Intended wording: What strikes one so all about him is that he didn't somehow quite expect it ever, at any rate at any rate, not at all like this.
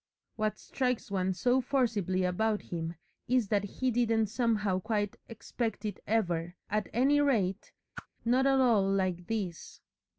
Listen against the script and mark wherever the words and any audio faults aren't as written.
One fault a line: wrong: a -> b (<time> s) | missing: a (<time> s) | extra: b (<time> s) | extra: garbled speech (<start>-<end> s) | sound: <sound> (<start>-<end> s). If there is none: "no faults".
wrong: all -> forcibly (1.6 s)
missing: at any rate (7.7 s)
sound: whoosh (7.9-8.1 s)